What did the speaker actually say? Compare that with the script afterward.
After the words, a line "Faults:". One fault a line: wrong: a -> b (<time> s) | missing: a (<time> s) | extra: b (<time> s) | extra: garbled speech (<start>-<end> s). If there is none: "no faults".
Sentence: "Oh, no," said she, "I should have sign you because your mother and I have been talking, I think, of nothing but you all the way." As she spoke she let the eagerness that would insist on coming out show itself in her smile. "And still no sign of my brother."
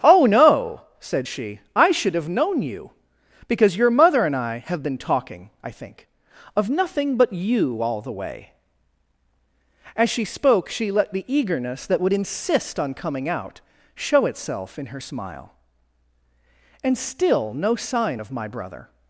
"Oh, no," said she, "I should have known you because your mother and I have been talking, I think, of nothing but you all the way." As she spoke she let the eagerness that would insist on coming out show itself in her smile. "And still no sign of my brother."
Faults:
wrong: sign -> known (2.3 s)